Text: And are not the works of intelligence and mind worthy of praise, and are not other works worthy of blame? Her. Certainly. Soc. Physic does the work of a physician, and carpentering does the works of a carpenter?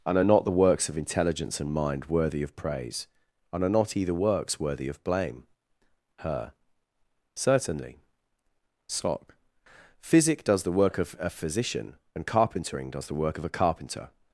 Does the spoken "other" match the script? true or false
false